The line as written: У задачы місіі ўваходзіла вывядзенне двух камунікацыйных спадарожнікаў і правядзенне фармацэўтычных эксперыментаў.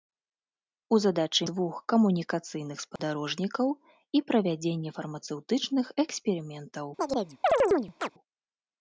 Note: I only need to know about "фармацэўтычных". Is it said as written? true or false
true